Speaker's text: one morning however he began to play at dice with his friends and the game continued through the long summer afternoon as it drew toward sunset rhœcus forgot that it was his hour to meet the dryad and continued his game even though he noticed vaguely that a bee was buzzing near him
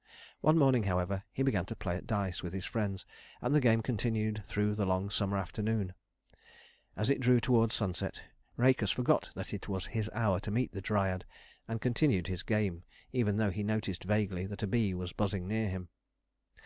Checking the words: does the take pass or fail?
pass